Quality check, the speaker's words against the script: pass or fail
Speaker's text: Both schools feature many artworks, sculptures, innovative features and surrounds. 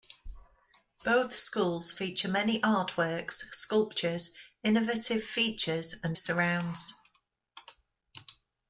pass